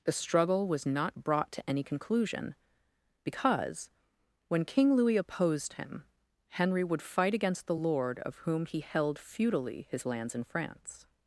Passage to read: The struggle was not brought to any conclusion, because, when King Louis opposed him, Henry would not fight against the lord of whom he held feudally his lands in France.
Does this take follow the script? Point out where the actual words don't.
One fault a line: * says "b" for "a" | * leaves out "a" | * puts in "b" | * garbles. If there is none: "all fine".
* leaves out "not"